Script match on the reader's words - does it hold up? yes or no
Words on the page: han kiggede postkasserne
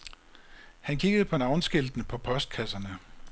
no